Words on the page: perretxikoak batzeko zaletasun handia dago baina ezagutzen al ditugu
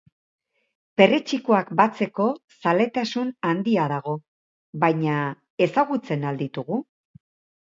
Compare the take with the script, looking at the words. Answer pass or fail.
pass